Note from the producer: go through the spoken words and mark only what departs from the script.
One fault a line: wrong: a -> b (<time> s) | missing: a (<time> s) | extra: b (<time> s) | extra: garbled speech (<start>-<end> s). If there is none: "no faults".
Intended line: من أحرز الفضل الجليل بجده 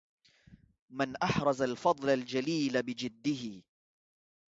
no faults